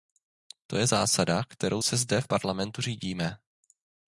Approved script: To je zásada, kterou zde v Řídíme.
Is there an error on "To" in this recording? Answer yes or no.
no